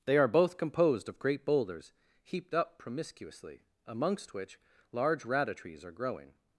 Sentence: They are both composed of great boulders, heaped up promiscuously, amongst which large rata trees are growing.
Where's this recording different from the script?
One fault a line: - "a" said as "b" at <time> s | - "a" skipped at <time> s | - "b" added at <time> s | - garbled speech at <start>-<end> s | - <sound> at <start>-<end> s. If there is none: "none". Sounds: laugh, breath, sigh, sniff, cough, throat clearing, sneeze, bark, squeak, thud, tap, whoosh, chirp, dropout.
none